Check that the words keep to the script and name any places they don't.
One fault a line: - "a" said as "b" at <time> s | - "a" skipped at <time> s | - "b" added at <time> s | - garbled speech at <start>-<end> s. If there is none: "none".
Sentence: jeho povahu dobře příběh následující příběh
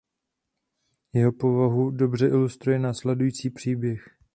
- "příběh" said as "ilustruje" at 2.3 s